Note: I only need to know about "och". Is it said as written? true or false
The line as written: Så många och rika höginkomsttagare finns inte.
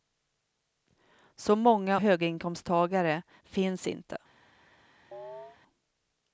false